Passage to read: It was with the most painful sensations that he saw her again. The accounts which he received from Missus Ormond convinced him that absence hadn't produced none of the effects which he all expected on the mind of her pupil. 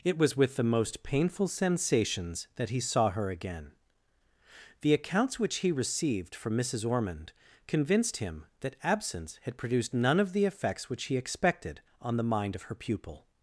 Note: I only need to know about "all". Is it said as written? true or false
false